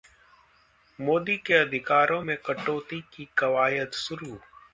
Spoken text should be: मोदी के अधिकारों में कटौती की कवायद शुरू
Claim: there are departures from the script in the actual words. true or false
false